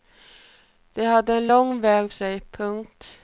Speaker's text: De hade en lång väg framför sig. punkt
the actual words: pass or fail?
fail